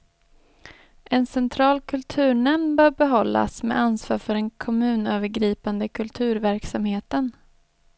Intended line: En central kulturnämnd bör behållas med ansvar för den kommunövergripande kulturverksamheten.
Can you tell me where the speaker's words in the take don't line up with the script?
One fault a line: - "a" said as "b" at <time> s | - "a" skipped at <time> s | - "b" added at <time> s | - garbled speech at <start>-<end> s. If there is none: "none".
none